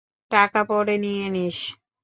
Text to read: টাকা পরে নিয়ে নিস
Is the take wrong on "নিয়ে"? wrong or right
right